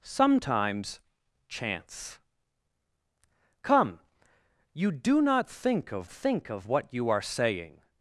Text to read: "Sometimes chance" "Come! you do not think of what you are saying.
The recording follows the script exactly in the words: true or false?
false